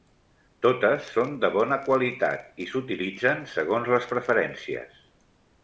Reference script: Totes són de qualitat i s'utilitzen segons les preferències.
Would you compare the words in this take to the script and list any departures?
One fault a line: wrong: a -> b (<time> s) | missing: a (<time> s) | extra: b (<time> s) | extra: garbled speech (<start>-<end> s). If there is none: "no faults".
extra: bona (1.6 s)